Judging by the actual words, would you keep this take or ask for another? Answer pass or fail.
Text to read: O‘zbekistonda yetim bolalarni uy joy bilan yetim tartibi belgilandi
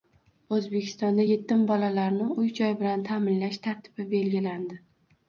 fail